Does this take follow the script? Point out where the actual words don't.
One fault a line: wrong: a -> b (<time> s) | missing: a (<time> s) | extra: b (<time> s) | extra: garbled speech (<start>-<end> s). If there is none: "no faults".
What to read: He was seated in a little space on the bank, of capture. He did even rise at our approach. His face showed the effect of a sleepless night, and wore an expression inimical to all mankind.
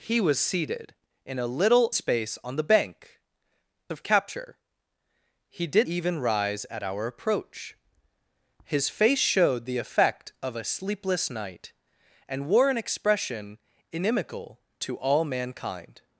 no faults